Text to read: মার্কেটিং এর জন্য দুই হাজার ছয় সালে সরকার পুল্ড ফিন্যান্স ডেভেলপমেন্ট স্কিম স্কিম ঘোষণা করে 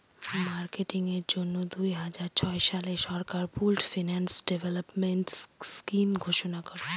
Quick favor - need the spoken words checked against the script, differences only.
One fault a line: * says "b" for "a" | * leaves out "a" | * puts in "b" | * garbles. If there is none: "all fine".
* leaves out "স্কিম"